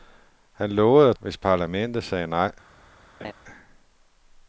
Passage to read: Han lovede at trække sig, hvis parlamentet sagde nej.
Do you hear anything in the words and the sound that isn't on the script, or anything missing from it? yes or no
yes